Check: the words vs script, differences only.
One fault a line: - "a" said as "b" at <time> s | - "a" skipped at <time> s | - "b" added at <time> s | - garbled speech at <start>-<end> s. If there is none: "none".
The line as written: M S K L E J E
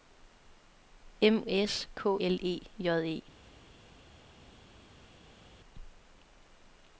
none